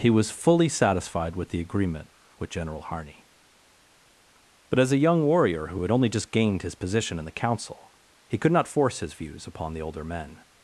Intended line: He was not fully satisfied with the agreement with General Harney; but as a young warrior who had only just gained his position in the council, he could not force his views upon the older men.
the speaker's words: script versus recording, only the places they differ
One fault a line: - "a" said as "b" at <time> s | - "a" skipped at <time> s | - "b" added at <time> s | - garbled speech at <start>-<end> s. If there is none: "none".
- "not" skipped at 0.3 s